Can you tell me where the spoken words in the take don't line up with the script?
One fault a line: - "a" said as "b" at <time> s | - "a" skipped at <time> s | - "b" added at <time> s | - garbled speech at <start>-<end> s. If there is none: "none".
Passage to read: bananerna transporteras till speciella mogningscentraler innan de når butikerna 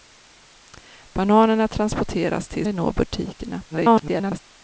- "speciella mogningscentraler innan" skipped at 2.7 s
- garbled speech at 3.7-4.4 s